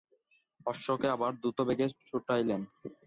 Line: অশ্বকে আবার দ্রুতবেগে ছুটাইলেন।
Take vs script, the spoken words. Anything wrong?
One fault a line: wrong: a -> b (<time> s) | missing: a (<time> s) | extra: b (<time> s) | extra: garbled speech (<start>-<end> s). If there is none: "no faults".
no faults